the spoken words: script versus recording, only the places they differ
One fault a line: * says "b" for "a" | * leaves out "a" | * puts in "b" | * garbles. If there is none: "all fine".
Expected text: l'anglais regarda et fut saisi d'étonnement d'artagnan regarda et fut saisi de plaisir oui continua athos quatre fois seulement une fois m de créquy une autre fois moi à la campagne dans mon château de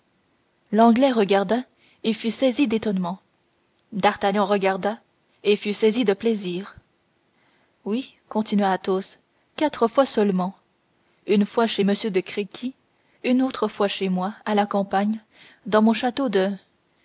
* puts in "chez"
* puts in "chez"